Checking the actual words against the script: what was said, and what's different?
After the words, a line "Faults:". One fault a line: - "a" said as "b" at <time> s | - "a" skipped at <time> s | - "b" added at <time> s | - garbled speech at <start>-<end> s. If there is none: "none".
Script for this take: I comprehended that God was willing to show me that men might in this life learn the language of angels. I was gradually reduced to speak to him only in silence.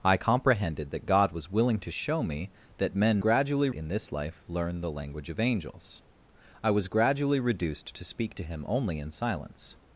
I comprehended that God was willing to show me that men gradually in this life learn the language of angels. I was gradually reduced to speak to him only in silence.
Faults:
- "might" said as "gradually" at 3.2 s